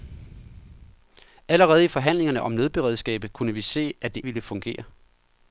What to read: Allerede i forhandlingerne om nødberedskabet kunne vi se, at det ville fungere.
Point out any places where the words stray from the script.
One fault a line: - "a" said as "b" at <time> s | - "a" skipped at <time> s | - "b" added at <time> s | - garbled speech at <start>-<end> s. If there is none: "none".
none